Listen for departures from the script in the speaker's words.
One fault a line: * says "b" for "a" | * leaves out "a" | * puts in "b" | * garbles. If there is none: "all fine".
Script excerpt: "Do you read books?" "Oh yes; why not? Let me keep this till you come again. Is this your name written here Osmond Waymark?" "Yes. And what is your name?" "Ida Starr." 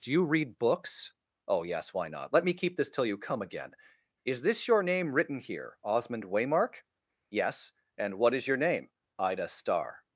all fine